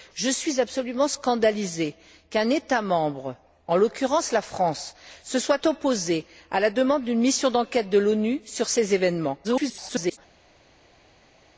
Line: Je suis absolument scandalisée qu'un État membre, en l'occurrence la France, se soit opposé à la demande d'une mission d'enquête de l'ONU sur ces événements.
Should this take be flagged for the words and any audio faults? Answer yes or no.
yes